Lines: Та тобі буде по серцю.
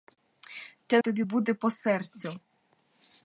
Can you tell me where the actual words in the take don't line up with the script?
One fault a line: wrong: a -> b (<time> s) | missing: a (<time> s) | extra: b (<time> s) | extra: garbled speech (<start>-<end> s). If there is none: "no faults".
no faults